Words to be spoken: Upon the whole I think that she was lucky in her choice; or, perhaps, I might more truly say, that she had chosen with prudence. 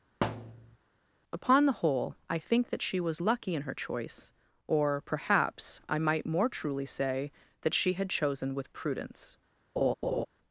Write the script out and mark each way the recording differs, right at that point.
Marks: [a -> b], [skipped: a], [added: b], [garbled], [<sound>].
[thud] Upon the whole I think that she was lucky in her choice; or, perhaps, I might more truly say, that she had chosen with prudence. [laugh]